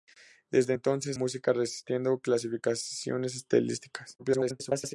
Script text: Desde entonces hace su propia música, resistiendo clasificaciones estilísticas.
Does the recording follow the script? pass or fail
fail